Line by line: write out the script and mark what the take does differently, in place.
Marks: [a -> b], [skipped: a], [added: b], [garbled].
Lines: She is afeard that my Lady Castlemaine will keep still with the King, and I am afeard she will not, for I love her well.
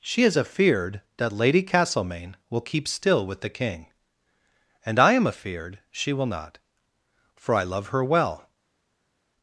She is afeard that [skipped: my] Lady Castlemaine will keep still with the King, and I am afeard she will not, for I love her well.